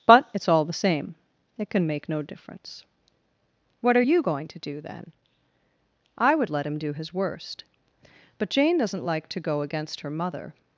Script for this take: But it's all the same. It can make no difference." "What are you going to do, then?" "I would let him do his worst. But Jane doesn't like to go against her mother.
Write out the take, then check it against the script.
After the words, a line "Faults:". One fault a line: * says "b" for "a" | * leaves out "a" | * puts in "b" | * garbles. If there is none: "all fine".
But it's all the same. It can make no difference." "What are you going to do, then?" "I would let him do his worst. But Jane doesn't like to go against her mother.
Faults:
all fine